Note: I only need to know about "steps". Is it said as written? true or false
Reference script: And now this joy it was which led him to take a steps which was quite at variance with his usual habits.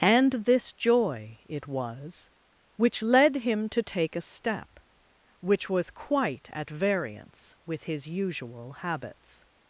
false